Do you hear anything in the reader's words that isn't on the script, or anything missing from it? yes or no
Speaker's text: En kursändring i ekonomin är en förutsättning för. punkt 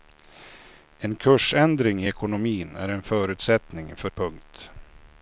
no